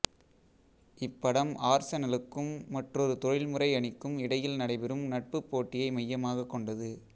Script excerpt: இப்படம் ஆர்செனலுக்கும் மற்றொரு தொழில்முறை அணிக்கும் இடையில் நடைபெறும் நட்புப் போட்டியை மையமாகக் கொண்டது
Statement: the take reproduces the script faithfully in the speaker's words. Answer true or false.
true